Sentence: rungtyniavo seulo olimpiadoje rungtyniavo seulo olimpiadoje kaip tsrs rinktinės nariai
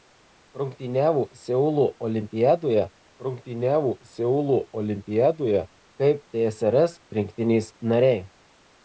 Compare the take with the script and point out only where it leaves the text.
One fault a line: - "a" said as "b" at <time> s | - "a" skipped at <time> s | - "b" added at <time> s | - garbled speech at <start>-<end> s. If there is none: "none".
none